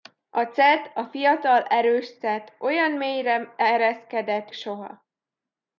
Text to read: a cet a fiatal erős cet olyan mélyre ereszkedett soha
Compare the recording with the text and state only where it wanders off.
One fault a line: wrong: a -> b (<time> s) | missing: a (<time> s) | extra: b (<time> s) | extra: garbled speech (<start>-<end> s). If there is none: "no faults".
no faults